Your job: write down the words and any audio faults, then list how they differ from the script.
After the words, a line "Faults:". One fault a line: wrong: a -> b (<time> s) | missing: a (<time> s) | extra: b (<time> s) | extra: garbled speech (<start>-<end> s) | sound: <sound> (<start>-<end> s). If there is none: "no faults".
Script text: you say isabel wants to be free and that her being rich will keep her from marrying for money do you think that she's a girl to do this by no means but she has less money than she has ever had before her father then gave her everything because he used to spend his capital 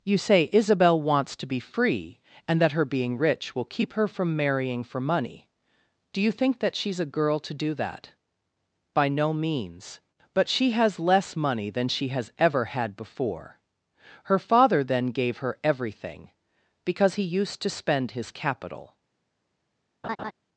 you say isabel wants to be free and that her being rich will keep her from marrying for money do you think that she's a girl to do that by no means but she has less money than she has ever had before her father then gave her everything because he used to spend his capital
Faults:
wrong: this -> that (7.8 s)
sound: laugh (20.0-20.3 s)